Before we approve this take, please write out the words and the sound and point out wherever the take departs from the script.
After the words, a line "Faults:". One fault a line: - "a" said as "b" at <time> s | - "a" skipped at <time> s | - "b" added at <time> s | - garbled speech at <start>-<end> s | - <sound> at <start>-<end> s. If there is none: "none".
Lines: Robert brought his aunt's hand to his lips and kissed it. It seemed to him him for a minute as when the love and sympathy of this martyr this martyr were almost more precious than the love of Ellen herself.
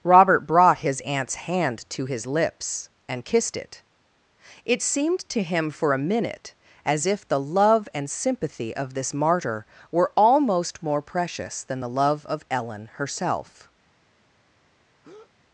Robert brought his aunt's hand to his lips and kissed it. It seemed to him for a minute as if the love and sympathy of this martyr were almost more precious than the love of Ellen herself.
Faults:
- "him" skipped at 5.7 s
- "when" said as "if" at 7.0 s
- "this martyr" skipped at 9.7 s
- breath at 15.0-15.3 s